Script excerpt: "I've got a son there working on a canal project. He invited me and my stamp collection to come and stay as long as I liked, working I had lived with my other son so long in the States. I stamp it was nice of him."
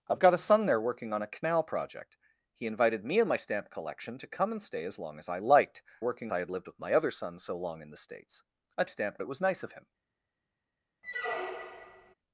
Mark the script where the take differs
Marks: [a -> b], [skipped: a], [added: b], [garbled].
"I've got a son there working on a canal project. He invited me and my stamp collection to come and stay as long as I liked, working I had lived with my other son so long in the States. I stamp it was nice of him."